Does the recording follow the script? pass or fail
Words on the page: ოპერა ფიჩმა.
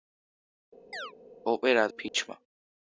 pass